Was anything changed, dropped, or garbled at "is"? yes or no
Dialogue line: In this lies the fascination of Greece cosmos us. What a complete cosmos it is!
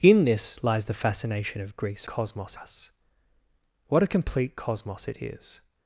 no